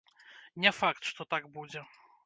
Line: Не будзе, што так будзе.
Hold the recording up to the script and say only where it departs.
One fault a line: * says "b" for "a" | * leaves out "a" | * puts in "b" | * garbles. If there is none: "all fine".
* says "факт" for "будзе"